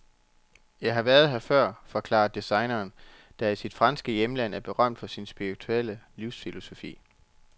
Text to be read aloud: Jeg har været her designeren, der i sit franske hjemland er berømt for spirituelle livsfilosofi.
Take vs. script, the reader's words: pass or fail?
fail